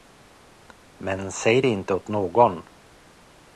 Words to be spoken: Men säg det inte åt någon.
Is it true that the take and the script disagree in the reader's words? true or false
false